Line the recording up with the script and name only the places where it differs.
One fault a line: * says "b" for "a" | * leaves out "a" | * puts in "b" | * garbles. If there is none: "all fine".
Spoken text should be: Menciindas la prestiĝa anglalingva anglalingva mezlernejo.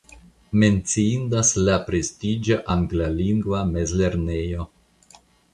* leaves out "anglalingva"